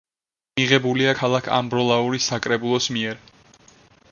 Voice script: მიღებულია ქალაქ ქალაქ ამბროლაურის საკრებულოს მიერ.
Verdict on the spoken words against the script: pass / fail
fail